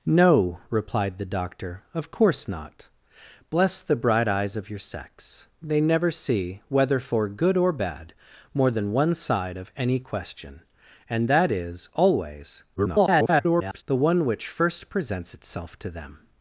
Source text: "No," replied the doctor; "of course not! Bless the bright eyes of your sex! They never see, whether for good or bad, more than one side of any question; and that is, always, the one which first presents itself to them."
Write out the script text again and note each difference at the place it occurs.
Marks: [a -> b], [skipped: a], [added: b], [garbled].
"No," replied the doctor; "of course not! Bless the bright eyes of your sex! They never see, whether for good or bad, more than one side of any question; and that is, always, [garbled] the one which first presents itself to them."